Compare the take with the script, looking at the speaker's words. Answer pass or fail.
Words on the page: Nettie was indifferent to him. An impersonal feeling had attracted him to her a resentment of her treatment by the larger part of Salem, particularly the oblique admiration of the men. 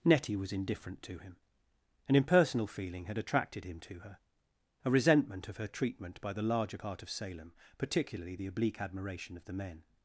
pass